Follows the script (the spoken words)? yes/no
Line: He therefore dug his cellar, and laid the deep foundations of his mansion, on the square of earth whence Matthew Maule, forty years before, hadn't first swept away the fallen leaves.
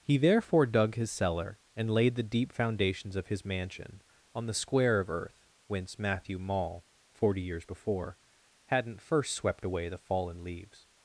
yes